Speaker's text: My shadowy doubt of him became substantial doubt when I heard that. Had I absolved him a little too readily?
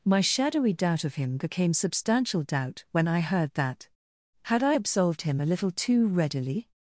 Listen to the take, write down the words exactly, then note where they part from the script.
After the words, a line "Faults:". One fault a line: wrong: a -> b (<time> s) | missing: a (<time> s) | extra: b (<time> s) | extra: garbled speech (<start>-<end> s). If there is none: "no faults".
My shadowy doubt of him became substantial doubt when I heard that. Had I absolved him a little too readily?
Faults:
no faults